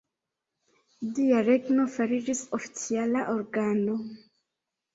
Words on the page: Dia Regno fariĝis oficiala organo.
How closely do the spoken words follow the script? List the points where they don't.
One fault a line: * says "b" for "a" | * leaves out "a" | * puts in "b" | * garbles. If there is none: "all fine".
all fine